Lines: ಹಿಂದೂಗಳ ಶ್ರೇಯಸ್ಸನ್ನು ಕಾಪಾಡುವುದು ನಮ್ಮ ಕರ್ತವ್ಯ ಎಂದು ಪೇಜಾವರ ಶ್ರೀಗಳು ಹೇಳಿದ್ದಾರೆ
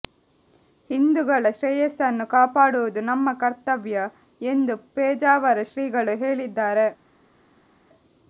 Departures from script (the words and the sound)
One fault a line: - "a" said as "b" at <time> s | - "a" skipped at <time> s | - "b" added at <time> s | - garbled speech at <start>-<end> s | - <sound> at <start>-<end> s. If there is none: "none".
none